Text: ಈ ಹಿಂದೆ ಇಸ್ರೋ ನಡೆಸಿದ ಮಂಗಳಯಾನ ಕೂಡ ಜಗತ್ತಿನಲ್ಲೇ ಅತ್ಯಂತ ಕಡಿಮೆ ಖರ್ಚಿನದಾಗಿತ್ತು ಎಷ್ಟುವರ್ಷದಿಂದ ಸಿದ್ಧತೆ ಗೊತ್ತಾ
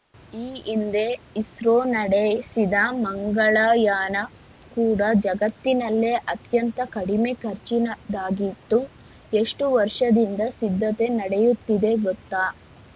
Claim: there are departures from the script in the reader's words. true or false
true